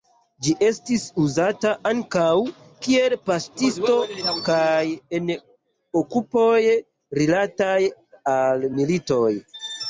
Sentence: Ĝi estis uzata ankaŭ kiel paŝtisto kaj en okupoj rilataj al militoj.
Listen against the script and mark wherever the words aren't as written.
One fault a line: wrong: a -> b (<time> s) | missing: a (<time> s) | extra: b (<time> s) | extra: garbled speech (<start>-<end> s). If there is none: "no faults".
no faults